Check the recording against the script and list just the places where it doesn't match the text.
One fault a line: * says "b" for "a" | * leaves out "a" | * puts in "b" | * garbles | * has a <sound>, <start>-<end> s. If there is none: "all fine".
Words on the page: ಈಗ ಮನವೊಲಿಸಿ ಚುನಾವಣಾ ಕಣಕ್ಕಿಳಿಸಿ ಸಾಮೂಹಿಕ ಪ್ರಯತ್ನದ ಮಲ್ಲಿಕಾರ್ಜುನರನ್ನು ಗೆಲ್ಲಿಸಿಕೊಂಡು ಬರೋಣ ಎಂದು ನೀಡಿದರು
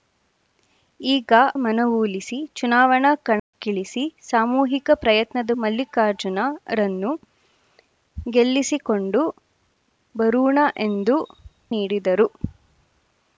* has a dropout, 3.4-3.5 s